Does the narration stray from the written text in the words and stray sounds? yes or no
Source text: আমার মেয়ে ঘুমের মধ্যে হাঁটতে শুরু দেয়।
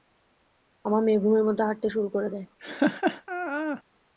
yes